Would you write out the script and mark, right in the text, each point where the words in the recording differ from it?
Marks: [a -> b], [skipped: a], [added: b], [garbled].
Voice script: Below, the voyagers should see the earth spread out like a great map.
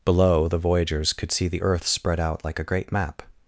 Below, the voyagers [should -> could] see the earth spread out like a great map.